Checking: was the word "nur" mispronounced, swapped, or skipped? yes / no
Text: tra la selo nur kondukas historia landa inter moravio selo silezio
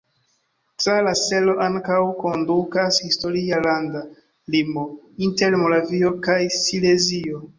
yes